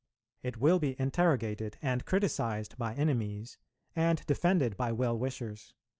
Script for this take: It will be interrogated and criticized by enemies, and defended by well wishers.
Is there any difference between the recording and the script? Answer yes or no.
no